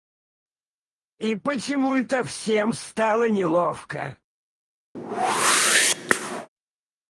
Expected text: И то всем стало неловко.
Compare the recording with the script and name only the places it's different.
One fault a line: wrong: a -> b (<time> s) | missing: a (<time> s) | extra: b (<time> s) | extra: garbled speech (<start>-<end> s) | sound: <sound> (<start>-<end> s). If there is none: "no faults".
extra: почему (1.4 s)
sound: whoosh (4.9-6.5 s)